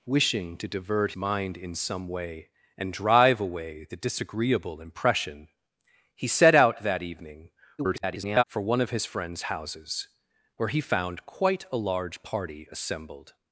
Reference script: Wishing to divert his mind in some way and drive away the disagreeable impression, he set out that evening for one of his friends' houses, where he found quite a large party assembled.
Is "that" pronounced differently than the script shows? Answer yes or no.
no